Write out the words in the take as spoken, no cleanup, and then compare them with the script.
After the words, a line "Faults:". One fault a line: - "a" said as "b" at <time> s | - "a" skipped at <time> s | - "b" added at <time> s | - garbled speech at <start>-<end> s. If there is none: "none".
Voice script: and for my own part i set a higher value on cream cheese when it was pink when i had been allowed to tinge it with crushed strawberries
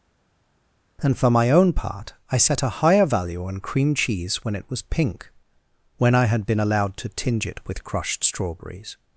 and for my own part i set a higher value on cream cheese when it was pink when i had been allowed to tinge it with crushed strawberries
Faults:
none